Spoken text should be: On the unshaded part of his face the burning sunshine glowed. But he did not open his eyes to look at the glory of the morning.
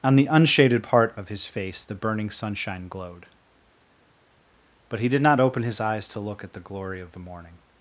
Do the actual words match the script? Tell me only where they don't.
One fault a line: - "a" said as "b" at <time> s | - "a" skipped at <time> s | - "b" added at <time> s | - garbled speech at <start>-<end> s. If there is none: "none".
none